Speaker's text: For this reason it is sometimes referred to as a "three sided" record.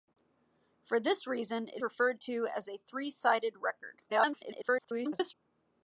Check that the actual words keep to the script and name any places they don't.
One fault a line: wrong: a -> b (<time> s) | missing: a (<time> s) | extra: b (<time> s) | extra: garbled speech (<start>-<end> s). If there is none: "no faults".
missing: is sometimes (1.8 s)
extra: garbled speech (4.1-5.3 s)